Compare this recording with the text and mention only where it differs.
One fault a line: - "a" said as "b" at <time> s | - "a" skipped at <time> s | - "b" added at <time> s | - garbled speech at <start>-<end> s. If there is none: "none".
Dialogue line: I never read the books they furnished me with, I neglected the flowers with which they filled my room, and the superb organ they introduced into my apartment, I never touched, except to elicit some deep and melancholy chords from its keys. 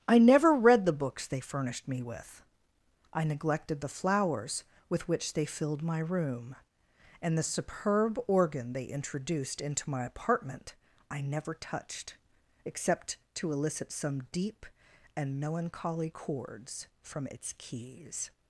none